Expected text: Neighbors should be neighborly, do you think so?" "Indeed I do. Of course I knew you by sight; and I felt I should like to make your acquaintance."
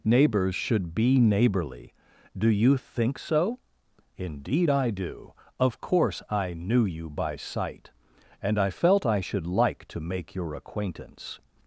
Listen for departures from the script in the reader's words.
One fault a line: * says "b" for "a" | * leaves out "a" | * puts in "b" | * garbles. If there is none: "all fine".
all fine